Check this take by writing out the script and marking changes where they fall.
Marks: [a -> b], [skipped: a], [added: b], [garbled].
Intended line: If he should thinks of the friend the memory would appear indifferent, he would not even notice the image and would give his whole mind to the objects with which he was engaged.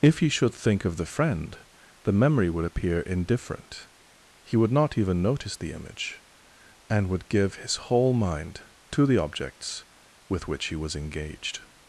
If he should [thinks -> think] of the friend the memory would appear indifferent, he would not even notice the image and would give his whole mind to the objects with which he was engaged.